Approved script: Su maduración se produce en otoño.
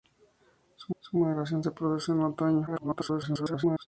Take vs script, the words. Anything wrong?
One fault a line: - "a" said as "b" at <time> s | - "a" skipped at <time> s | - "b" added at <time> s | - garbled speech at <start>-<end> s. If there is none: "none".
- "su" added at 1.0 s
- garbled speech at 2.7-3.9 s